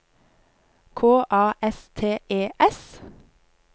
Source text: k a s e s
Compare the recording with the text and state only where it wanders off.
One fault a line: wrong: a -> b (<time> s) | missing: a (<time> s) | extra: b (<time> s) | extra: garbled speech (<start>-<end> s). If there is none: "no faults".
extra: t (1.9 s)